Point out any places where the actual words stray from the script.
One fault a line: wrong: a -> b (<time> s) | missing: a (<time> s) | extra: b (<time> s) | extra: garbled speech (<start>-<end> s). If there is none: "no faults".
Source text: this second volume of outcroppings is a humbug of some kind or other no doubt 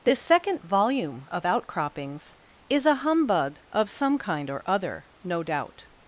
no faults